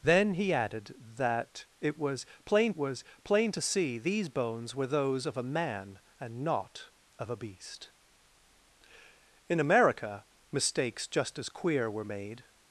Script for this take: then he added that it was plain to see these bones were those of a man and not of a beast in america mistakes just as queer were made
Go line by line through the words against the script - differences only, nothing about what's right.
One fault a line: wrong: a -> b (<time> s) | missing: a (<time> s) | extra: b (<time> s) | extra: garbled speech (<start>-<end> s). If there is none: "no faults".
extra: was plain (2.7 s)